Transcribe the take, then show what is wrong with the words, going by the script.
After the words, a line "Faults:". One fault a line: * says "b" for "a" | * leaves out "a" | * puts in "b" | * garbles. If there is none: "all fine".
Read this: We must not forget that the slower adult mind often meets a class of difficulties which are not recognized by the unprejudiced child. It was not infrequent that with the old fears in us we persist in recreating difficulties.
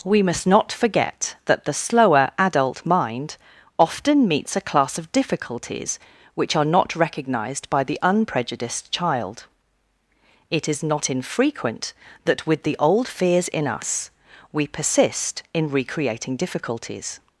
We must not forget that the slower adult mind often meets a class of difficulties which are not recognized by the unprejudiced child. It is not infrequent that with the old fears in us we persist in recreating difficulties.
Faults:
* says "is" for "was"